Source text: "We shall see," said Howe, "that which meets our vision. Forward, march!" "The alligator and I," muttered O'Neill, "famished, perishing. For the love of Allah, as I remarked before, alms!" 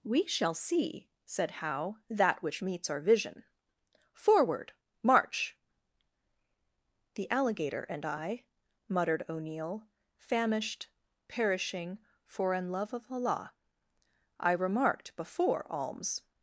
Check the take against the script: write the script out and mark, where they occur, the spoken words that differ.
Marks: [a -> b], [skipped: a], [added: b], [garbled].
"We shall see," said Howe, "that which meets our vision. Forward, march!" "The alligator and I," muttered O'Neill, "famished, perishing. For [the -> an] love of Allah, [skipped: as] I remarked before, alms!"